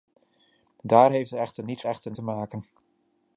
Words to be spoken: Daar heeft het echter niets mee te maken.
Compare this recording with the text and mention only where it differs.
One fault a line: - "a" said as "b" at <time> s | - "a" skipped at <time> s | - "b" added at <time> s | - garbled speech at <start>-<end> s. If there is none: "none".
- "mee" said as "echter" at 1.9 s